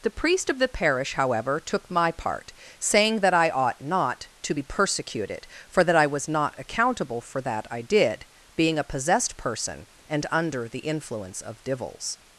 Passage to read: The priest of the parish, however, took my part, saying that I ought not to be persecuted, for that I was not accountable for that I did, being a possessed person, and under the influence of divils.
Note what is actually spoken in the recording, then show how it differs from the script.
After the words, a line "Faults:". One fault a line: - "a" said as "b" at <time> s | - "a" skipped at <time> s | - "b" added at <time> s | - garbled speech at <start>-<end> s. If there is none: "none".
The priest of the parish, however, took my part, saying that I ought not to be persecuted, for that I was not accountable for that I did, being a possessed person, and under the influence of divils.
Faults:
none